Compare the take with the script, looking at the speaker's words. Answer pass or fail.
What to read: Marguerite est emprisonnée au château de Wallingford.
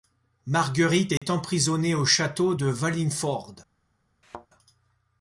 pass